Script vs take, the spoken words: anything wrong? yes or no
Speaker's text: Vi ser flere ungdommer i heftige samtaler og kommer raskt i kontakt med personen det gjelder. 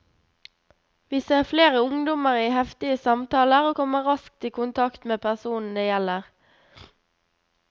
no